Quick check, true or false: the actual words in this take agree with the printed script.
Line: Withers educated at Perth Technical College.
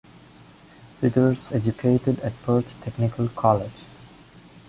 true